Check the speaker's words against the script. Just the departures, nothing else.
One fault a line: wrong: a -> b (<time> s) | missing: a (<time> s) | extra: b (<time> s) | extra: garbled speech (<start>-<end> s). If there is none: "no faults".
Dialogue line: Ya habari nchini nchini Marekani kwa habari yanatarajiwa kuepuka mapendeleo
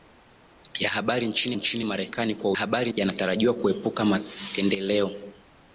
no faults